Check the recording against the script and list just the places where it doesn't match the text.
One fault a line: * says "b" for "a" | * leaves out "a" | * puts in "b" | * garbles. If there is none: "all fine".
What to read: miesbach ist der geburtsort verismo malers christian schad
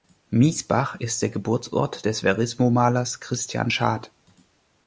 * puts in "des"